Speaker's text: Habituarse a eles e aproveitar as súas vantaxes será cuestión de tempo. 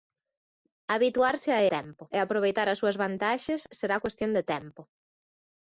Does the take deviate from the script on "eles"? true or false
true